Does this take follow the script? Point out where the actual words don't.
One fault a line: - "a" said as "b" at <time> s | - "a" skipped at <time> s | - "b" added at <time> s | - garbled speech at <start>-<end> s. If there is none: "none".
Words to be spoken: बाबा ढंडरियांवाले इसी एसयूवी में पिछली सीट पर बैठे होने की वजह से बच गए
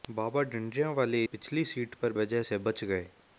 - "इसी एसयूवी में" skipped at 1.2 s
- "बैठे होने की" skipped at 2.1 s